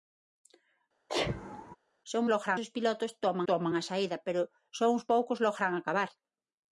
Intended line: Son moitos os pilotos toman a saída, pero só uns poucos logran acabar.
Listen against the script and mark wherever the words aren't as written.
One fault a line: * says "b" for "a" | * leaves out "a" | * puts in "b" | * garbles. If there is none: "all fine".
* says "logran" for "moitos"
* puts in "toman"